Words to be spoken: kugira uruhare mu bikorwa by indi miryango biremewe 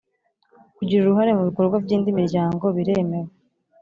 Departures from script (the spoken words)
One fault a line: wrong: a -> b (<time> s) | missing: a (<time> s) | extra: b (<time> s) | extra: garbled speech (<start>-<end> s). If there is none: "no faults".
no faults